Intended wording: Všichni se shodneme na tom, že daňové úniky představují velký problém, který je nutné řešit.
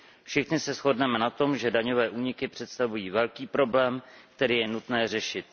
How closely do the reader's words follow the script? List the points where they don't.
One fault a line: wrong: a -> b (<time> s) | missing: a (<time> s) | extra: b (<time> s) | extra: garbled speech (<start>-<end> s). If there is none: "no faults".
no faults